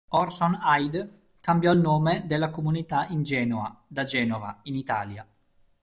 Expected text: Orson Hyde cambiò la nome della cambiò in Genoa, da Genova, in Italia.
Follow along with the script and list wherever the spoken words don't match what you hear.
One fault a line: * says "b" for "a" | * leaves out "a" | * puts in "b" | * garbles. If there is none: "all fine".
* says "il" for "la"
* says "comunità" for "cambiò"